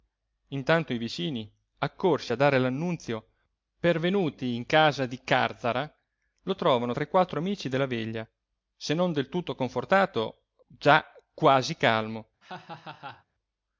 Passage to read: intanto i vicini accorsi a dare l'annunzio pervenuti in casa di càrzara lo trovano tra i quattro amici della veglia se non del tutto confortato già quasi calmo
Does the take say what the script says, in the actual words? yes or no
yes